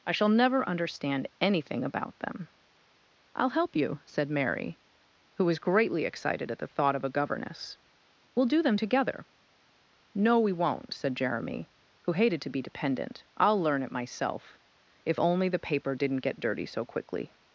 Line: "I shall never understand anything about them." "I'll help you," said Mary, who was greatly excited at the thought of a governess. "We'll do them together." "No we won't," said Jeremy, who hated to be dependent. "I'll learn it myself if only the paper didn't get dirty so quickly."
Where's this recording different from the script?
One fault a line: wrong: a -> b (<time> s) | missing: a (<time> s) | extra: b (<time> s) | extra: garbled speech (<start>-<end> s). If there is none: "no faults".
no faults